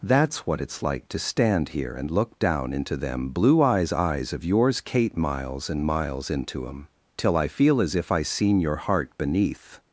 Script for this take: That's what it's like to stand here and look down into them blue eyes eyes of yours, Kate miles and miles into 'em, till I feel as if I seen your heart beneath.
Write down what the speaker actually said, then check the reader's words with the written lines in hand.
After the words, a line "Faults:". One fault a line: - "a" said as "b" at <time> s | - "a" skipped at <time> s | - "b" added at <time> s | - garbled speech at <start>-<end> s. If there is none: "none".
That's what it's like to stand here and look down into them blue eyes eyes of yours, Kate miles and miles into 'em, till I feel as if I seen your heart beneath.
Faults:
none